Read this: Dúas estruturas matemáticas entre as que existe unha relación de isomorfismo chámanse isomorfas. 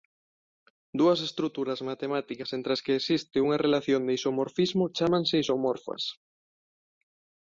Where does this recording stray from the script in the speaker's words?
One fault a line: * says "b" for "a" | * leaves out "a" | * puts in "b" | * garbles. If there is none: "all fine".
all fine